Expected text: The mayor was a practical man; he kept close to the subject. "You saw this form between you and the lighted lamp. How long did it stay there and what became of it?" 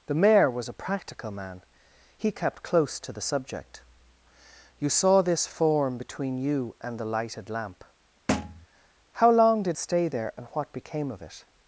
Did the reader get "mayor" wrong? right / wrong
right